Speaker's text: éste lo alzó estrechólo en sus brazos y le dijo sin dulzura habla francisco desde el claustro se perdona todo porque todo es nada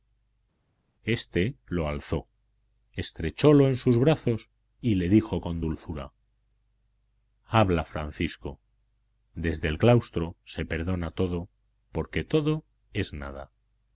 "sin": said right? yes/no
no